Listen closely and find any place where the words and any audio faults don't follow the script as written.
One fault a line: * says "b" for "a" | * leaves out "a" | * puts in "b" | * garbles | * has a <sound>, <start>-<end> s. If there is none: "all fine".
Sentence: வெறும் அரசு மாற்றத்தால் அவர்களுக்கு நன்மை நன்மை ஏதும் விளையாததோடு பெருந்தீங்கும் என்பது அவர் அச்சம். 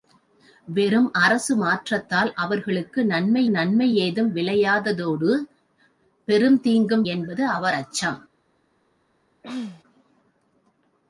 * has a throat clearing, 9.4-9.8 s